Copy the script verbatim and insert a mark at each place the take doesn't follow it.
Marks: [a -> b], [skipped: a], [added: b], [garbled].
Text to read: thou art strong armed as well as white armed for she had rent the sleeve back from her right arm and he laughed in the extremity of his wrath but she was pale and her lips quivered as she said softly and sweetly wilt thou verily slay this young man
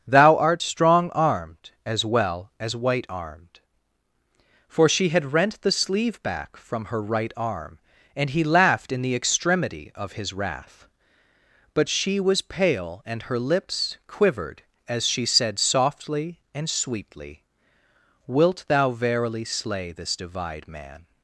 thou art strong armed as well as white armed for she had rent the sleeve back from her right arm and he laughed in the extremity of his wrath but she was pale and her lips quivered as she said softly and sweetly wilt thou verily slay this [young -> divide] man